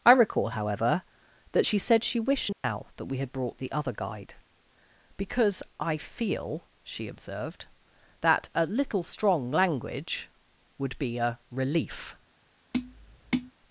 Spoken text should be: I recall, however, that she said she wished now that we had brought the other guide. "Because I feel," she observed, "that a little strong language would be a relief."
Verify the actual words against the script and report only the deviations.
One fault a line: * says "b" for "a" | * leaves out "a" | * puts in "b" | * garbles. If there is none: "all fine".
all fine